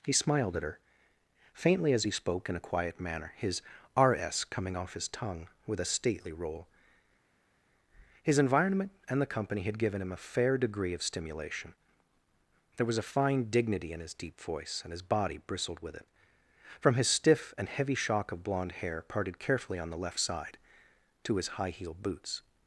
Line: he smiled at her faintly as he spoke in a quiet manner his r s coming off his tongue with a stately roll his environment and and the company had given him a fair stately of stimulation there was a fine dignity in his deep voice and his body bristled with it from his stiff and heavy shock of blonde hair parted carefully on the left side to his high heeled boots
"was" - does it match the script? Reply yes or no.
yes